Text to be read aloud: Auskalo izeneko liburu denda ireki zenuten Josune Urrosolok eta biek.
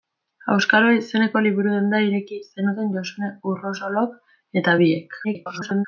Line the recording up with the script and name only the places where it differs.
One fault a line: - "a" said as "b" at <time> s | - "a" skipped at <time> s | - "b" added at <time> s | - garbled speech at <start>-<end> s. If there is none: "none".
- garbled speech at 5.2-5.9 s